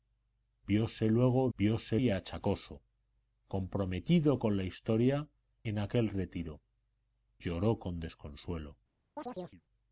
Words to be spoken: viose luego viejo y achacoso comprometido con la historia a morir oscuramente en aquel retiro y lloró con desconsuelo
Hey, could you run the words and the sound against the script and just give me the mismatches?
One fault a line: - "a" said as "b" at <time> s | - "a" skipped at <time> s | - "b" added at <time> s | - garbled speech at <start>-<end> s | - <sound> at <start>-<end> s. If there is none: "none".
- "viejo" said as "viose" at 1.6 s
- "a morir oscuramente" skipped at 5.3 s
- "y" skipped at 6.6 s
- chirp at 9.2-9.6 s